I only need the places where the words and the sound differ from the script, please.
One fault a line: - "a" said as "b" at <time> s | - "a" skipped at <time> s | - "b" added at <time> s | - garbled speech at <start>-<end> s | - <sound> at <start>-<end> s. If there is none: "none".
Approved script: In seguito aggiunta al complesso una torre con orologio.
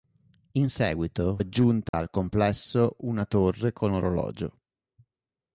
- dropout at 1.9-1.9 s